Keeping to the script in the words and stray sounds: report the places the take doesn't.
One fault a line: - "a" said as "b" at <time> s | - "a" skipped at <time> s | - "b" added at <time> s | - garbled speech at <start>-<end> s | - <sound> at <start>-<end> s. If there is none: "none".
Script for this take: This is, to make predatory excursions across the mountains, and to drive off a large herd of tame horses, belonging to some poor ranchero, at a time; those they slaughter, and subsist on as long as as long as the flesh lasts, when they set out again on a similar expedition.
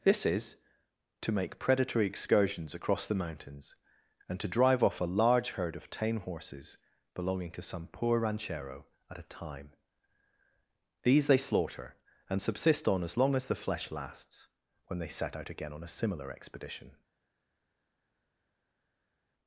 - "those" said as "these" at 11.0 s
- "as long as" skipped at 13.5 s